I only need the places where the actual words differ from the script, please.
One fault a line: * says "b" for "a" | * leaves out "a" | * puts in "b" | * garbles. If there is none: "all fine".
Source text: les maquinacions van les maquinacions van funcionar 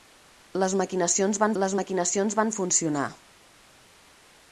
all fine